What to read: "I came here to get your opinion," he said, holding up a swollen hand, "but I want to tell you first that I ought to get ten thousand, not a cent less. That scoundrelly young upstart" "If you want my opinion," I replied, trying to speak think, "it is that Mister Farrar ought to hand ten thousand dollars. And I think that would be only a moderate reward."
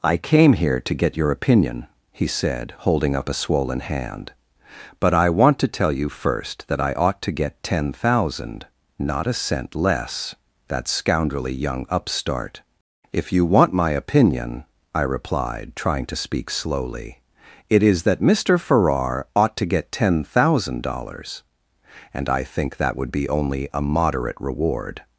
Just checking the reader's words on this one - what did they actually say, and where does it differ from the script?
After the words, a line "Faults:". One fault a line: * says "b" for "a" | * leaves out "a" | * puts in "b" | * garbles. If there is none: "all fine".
"I came here to get your opinion," he said, holding up a swollen hand, "but I want to tell you first that I ought to get ten thousand, not a cent less. That scoundrelly young upstart" "If you want my opinion," I replied, trying to speak slowly, "it is that Mister Farrar ought to get ten thousand dollars. And I think that would be only a moderate reward."
Faults:
* says "slowly" for "think"
* says "get" for "hand"